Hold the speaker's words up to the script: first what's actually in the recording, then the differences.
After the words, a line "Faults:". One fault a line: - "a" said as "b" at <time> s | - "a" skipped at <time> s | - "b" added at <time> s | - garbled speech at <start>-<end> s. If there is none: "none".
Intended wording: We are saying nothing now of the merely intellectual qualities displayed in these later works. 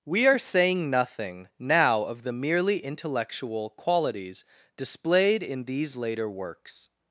We are saying nothing now of the merely intellectual qualities displayed in these later works.
Faults:
none